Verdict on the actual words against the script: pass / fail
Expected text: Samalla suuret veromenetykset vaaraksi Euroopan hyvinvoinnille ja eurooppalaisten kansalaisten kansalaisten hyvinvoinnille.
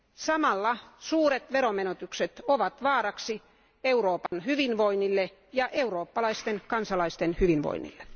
fail